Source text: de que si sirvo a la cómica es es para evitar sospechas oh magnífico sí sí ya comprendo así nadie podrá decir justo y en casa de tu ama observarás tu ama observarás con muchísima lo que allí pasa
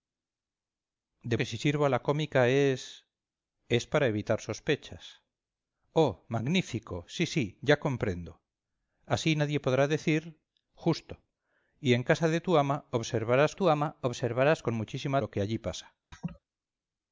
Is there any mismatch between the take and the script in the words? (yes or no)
no